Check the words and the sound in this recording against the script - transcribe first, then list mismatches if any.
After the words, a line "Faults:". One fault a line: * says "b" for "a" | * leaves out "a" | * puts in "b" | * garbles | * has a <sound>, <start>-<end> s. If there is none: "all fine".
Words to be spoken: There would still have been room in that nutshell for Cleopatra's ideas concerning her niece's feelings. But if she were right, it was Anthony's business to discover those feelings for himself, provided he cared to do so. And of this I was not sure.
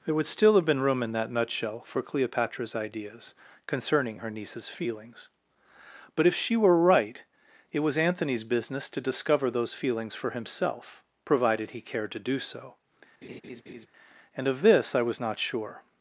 There would still have been room in that nutshell for Cleopatra's ideas concerning her niece's feelings. But if she were right, it was Anthony's business to discover those feelings for himself, provided he cared to do so. And of this I was not sure.
Faults:
* has a laugh, 13.2-13.9 s